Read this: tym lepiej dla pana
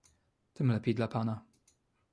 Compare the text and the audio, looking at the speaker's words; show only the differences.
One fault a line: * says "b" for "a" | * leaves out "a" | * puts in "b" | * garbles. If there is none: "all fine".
all fine